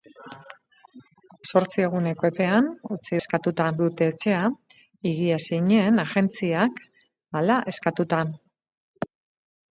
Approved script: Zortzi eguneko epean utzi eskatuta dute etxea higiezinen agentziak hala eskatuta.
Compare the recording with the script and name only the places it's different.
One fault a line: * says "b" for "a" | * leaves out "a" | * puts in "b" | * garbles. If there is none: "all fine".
all fine